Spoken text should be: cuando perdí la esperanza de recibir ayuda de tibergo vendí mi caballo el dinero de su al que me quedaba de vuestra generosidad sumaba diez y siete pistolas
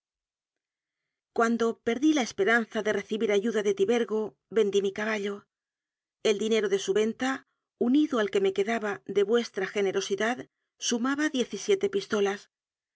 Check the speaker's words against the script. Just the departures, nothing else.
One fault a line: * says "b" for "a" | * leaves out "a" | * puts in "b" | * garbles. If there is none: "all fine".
* puts in "venta unido"